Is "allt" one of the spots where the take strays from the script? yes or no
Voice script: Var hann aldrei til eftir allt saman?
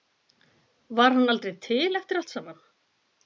no